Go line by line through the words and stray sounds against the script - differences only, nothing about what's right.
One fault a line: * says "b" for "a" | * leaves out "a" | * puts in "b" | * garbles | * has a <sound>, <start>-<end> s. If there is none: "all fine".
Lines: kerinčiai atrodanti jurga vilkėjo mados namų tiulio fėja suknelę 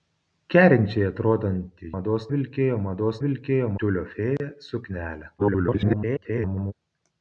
* says "mados" for "jurga"
* says "vilkėjo" for "namų"
* has a dropout, 4.4-4.4 s
* garbles